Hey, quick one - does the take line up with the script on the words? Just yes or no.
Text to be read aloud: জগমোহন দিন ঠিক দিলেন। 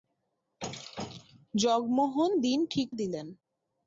yes